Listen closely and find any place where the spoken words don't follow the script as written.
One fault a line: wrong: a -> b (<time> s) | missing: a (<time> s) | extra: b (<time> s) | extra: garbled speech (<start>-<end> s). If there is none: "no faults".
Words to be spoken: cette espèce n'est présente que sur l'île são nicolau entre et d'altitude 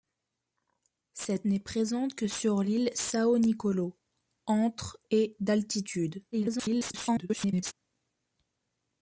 missing: espèce (1.5 s)
extra: garbled speech (6.3-7.7 s)